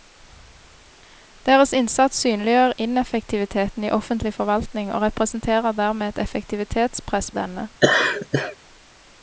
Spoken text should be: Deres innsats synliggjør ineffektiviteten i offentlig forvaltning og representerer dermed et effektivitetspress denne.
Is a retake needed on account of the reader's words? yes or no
no